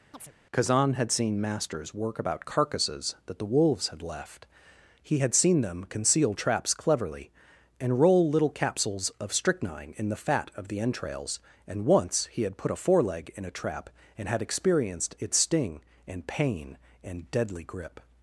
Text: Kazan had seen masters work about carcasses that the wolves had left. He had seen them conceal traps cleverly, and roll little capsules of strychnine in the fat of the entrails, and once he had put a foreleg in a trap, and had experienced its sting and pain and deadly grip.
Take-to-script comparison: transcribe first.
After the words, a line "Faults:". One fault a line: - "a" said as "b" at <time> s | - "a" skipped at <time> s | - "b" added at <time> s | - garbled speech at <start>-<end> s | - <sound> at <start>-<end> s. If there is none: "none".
Kazan had seen masters work about carcasses that the wolves had left. He had seen them conceal traps cleverly, and roll little capsules of strychnine in the fat of the entrails, and once he had put a foreleg in a trap, and had experienced its sting and pain and deadly grip.
Faults:
- chirp at 0.1-0.3 s